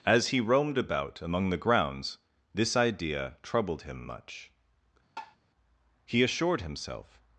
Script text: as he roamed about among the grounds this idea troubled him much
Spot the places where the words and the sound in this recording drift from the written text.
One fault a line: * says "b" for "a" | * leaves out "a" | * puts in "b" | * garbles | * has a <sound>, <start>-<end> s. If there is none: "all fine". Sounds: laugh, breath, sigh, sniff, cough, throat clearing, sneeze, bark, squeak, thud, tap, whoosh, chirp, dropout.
* has a tap, 5.2-5.4 s
* puts in "he assured himself"